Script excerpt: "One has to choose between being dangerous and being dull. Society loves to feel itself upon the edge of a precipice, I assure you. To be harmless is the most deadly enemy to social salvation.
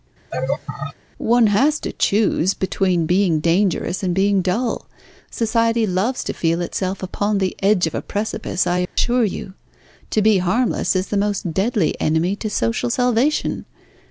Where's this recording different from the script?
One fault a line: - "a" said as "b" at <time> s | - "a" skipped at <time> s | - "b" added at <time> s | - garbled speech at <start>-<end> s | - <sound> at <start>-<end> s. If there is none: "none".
- laugh at 0.3-0.9 s
- dropout at 8.9-9.0 s